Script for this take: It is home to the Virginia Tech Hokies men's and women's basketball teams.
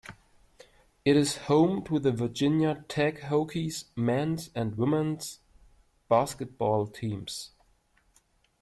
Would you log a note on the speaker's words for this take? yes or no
no